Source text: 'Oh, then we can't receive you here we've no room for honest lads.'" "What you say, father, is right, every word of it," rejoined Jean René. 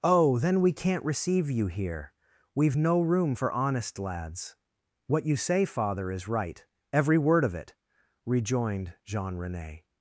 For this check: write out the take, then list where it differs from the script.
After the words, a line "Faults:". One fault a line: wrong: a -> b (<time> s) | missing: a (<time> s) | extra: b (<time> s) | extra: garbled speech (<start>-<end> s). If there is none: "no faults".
'Oh, then we can't receive you here we've no room for honest lads.'" "What you say, father, is right, every word of it," rejoined Jean René.
Faults:
no faults